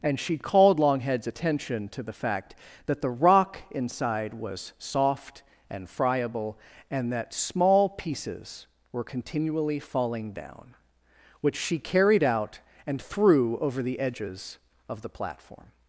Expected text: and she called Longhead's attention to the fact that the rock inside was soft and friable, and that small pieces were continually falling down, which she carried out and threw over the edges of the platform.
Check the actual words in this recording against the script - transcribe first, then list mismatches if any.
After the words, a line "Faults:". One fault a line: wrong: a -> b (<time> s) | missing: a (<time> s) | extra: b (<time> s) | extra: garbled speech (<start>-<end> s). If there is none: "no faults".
and she called Longhead's attention to the fact that the rock inside was soft and friable, and that small pieces were continually falling down, which she carried out and threw over the edges of the platform.
Faults:
no faults